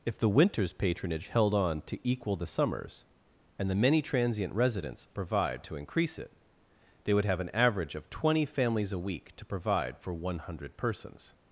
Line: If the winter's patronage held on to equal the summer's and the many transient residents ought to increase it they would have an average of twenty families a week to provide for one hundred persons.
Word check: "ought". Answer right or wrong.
wrong